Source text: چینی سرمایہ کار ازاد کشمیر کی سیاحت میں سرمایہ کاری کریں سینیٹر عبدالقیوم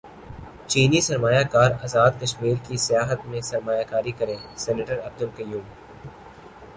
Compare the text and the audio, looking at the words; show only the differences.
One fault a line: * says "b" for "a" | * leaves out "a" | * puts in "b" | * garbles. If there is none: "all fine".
all fine